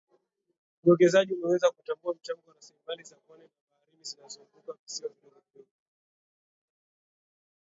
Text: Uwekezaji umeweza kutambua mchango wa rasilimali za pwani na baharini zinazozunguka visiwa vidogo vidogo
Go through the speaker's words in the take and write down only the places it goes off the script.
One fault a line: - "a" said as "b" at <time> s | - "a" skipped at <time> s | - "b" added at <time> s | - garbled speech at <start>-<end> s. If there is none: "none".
none